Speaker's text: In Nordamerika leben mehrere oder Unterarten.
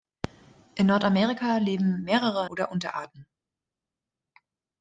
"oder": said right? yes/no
yes